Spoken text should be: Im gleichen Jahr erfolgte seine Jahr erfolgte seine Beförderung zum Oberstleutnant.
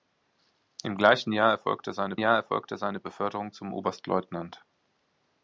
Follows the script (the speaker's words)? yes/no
yes